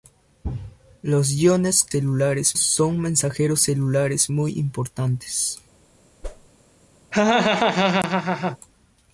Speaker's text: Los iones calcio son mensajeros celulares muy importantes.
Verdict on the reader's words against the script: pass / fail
fail